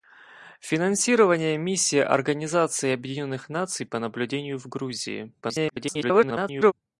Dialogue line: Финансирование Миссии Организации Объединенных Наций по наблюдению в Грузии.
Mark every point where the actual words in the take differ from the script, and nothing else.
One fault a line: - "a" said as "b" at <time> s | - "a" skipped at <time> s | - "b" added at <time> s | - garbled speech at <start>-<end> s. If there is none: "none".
- garbled speech at 5.4-6.7 s